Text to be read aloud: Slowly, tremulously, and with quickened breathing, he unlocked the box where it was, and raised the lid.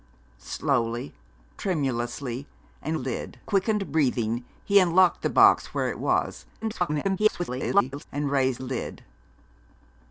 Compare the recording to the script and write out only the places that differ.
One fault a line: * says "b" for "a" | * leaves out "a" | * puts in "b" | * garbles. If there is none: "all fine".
* says "lid" for "with"
* garbles
* leaves out "the"